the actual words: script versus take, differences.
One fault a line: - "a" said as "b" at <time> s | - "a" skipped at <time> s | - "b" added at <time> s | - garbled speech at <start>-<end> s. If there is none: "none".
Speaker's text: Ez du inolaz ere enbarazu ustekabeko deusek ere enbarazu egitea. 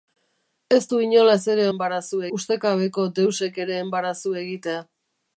none